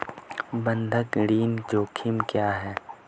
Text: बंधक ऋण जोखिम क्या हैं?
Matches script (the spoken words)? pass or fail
pass